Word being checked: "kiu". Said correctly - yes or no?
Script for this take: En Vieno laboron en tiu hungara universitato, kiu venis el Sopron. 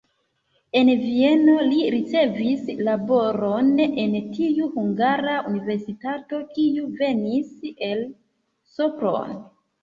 yes